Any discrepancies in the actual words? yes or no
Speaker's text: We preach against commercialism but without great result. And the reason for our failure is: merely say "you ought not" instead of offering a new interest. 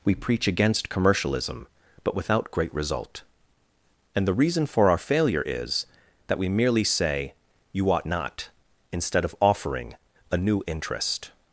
yes